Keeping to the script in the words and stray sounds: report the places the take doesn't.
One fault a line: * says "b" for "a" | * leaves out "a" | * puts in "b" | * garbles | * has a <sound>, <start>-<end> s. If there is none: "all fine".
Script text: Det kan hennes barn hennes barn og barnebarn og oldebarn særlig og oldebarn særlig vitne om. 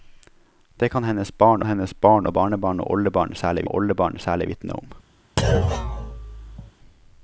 * has a thud, 5.4-6.7 s